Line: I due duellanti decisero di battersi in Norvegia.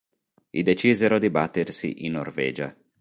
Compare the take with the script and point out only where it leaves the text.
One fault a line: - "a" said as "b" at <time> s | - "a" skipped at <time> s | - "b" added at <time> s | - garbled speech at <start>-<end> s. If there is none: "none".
- "due duellanti" skipped at 0.6 s